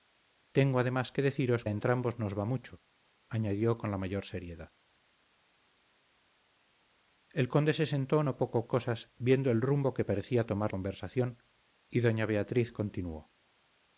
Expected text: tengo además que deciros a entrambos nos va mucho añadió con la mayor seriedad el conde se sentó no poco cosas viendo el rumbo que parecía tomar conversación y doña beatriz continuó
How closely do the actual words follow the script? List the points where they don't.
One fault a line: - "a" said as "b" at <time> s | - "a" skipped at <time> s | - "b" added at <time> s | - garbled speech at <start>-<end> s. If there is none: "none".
none